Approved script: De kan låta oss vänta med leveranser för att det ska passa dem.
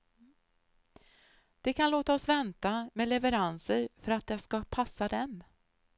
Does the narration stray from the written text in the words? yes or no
no